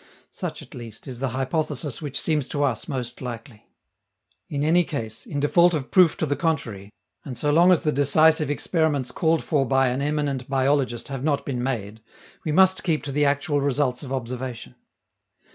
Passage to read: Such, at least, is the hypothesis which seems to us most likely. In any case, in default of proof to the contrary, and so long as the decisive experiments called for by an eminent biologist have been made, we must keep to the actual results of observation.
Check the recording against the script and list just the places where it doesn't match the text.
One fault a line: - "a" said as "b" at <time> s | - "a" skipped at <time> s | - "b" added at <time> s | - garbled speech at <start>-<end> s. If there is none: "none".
- "not" added at 11.2 s